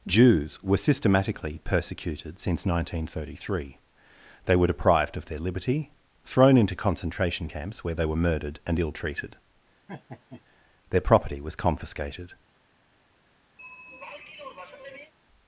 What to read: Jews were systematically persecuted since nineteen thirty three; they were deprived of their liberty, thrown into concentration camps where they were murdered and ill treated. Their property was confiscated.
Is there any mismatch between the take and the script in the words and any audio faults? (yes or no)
yes